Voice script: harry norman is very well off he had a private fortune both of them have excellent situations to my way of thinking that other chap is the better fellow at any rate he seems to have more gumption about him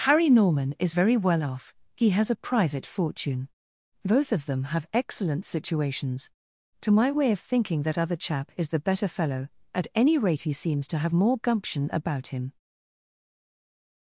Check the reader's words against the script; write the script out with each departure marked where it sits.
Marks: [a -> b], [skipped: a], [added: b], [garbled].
harry norman is very well off he [had -> has] a private fortune both of them have excellent situations to my way of thinking that other chap is the better fellow at any rate he seems to have more gumption about him